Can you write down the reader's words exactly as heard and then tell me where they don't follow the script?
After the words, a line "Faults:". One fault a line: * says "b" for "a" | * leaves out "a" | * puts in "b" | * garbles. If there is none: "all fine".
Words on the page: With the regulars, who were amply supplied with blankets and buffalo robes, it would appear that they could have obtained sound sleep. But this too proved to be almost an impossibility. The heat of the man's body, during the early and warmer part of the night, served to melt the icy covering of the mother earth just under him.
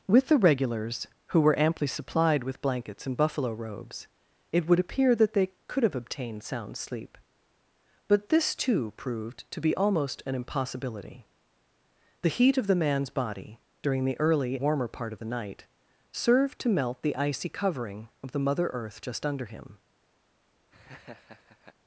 With the regulars, who were amply supplied with blankets and buffalo robes, it would appear that they could have obtained sound sleep. But this too proved to be almost an impossibility. The heat of the man's body, during the early warmer part of the night, served to melt the icy covering of the mother earth just under him.
Faults:
* leaves out "and"